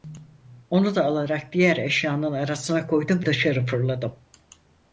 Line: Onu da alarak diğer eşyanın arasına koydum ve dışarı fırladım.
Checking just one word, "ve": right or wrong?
wrong